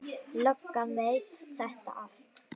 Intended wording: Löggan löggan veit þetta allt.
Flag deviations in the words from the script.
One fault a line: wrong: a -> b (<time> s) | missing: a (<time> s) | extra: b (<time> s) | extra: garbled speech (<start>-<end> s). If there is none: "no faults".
missing: löggan (0.9 s)